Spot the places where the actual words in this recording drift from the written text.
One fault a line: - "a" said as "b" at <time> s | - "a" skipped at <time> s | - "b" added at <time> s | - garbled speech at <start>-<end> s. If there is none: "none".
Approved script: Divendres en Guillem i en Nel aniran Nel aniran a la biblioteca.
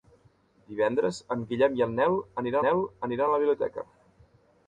none